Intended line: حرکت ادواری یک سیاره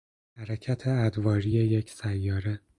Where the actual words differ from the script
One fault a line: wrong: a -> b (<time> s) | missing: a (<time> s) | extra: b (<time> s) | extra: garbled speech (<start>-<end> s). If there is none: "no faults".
no faults